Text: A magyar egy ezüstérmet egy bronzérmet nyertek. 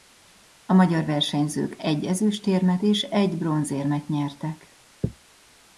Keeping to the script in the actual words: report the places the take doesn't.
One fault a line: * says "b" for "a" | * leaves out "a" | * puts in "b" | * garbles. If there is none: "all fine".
* puts in "versenyzők"
* puts in "és"